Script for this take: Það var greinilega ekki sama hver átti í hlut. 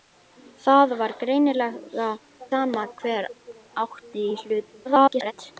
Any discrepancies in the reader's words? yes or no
yes